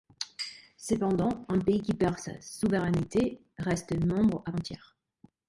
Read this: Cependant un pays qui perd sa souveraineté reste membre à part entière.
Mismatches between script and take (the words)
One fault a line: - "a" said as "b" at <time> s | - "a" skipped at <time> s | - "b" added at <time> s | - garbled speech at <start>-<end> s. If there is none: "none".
- "part" skipped at 4.5 s